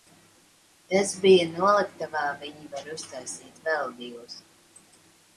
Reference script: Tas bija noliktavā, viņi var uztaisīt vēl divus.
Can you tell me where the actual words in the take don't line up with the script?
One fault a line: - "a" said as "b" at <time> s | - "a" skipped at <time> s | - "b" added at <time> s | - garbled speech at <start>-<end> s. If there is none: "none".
none